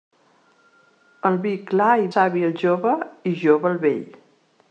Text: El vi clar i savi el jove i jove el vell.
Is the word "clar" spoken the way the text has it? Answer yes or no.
yes